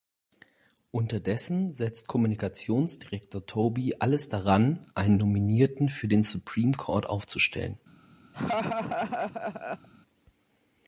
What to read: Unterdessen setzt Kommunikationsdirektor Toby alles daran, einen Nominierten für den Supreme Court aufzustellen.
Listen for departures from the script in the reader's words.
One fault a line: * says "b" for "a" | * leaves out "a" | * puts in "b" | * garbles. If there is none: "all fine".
all fine